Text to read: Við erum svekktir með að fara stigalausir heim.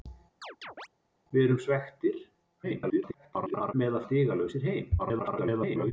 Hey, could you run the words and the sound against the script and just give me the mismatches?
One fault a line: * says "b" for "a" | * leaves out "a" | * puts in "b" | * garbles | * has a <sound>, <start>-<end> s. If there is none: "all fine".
* has a chirp, 0.4-0.9 s
* garbles
* leaves out "fara"
* garbles